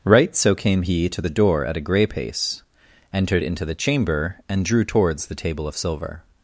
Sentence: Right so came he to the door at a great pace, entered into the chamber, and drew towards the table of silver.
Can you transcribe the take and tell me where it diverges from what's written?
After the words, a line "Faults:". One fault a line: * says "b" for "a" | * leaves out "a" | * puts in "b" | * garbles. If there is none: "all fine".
Right so came he to the door at a grey pace, entered into the chamber, and drew towards the table of silver.
Faults:
* says "grey" for "great"